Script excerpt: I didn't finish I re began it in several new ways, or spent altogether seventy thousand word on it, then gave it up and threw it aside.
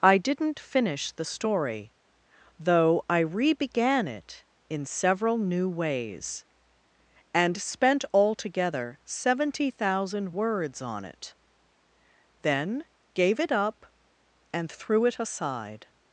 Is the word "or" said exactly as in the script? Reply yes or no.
no